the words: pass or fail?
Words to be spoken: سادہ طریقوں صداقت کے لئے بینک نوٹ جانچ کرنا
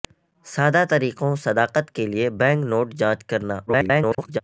fail